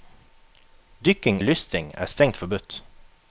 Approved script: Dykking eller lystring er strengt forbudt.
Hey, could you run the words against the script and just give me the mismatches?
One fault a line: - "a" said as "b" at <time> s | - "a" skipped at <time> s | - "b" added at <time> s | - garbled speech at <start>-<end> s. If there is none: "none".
- "eller" skipped at 1.4 s